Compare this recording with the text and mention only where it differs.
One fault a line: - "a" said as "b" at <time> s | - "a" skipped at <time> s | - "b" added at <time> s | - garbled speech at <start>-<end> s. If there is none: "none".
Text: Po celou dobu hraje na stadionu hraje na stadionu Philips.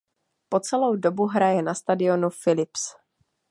- "hraje na stadionu" skipped at 2.3 s